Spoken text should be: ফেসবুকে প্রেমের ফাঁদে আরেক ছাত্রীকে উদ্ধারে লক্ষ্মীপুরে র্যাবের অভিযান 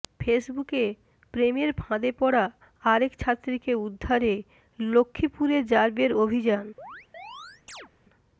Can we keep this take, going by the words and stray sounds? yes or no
no